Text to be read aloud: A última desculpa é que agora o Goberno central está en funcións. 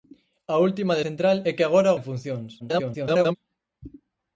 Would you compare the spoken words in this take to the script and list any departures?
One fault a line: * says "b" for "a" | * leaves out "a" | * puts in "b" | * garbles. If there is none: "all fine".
* says "central" for "desculpa"
* leaves out "Goberno central está"
* garbles